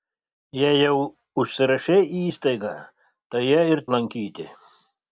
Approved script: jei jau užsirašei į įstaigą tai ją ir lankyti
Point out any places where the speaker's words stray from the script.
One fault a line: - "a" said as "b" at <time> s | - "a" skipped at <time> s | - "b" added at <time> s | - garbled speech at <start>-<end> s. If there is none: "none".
none